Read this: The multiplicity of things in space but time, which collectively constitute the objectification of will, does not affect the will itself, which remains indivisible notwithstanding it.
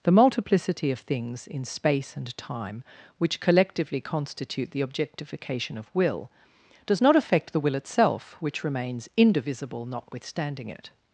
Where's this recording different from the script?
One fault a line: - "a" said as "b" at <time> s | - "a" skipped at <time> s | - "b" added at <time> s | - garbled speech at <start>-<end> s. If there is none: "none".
- "but" said as "and" at 2.2 s